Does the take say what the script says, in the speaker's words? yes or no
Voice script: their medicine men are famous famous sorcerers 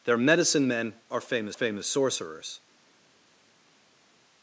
yes